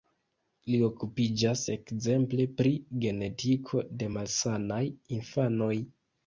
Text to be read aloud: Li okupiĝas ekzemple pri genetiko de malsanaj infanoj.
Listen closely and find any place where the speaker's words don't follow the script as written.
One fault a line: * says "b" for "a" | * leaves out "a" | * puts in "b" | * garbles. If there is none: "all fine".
all fine